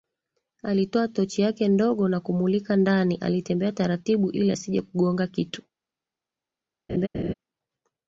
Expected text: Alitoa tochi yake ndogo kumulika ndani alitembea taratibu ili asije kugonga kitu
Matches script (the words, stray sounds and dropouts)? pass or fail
fail